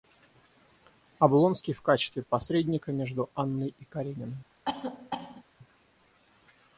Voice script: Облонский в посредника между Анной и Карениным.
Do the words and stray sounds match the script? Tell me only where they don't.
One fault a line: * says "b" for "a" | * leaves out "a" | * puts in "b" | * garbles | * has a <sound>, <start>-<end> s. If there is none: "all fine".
* puts in "качестве"
* has a cough, 4.7-5.4 s